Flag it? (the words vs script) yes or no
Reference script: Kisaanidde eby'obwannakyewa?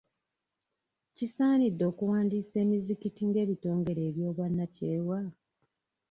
yes